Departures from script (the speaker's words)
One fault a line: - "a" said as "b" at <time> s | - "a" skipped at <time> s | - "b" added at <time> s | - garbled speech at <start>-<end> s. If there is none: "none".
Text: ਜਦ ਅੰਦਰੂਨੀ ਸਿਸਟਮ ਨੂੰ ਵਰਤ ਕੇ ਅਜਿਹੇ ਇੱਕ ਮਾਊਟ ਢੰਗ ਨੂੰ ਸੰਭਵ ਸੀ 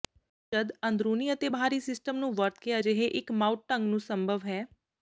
- "ਅਤੇ ਬਾਹਰੀ" added at 1.3 s
- "ਸੀ" said as "ਹੈ" at 4.5 s